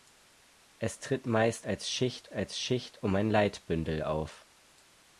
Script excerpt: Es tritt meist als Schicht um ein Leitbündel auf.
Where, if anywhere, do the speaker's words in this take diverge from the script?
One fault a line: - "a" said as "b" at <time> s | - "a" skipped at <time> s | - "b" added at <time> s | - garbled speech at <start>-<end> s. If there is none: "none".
- "als Schicht" added at 2.3 s